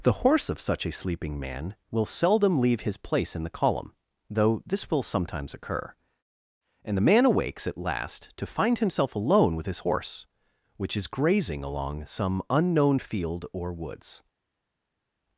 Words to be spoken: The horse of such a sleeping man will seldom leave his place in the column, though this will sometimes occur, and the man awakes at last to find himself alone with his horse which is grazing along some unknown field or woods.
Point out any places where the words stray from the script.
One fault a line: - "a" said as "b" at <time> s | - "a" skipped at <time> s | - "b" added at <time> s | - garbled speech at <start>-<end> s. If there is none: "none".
none